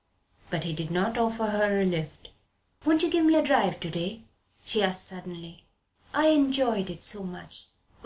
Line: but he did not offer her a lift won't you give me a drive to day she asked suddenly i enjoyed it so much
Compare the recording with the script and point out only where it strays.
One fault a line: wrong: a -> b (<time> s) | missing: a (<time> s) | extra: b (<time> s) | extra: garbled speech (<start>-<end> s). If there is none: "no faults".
no faults